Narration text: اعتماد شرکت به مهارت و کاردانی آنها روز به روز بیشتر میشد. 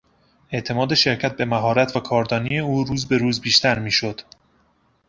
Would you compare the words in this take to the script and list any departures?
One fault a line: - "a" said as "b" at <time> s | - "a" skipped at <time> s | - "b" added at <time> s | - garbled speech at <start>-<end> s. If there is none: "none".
- "آنها" said as "او" at 2.6 s